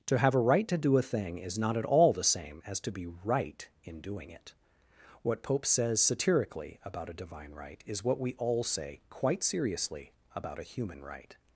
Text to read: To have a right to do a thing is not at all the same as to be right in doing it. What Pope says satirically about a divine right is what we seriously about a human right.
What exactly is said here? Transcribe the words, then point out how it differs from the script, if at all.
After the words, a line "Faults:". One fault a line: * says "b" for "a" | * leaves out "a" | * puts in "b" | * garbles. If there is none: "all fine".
To have a right to do a thing is not at all the same as to be right in doing it. What Pope says satirically about a divine right is what we all say quite seriously about a human right.
Faults:
* puts in "all say quite"